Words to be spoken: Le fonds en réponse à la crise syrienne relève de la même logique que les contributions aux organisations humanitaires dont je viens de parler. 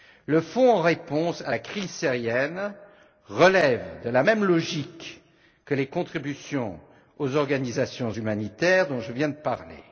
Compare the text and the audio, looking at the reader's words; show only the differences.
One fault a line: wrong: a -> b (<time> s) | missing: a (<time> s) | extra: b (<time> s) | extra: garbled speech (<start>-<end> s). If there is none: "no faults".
no faults